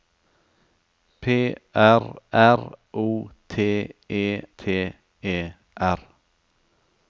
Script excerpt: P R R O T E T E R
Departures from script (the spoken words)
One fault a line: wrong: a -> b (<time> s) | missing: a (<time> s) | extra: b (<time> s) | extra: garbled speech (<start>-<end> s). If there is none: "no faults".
no faults